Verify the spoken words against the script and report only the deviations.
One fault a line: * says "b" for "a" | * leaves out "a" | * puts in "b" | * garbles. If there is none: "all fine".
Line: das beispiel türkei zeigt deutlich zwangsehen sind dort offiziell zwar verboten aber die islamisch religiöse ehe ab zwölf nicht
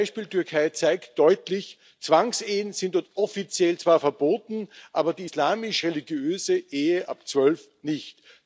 all fine